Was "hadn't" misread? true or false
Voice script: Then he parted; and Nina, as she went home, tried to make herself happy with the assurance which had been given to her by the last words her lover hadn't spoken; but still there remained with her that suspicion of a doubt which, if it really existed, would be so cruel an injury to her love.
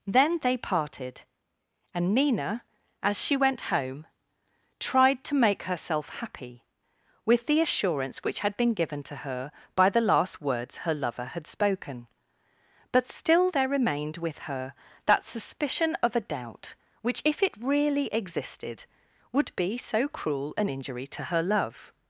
true